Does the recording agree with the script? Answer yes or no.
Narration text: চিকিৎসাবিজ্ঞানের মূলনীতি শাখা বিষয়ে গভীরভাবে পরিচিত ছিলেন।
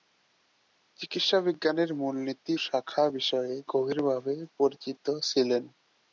yes